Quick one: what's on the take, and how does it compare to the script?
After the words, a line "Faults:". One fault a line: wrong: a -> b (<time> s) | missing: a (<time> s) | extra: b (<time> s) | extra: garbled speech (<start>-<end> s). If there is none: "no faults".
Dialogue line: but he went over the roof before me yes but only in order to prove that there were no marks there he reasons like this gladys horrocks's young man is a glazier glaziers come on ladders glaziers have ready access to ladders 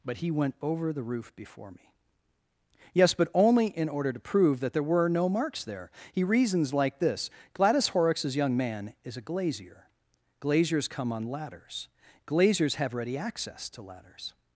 but he went over the roof before me yes but only in order to prove that there were no marks there he reasons like this gladys horrocks's young man is a glazier glaziers come on ladders glaziers have ready access to ladders
Faults:
no faults